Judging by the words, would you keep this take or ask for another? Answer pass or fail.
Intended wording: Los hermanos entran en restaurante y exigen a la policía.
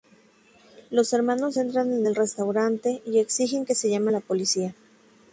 fail